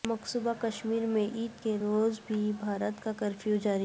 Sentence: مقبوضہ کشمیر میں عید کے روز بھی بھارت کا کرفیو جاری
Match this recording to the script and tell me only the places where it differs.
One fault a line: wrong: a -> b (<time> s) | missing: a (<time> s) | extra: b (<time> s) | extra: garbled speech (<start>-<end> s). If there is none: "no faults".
no faults